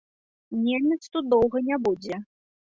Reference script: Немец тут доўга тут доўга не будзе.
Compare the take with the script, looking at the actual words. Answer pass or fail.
fail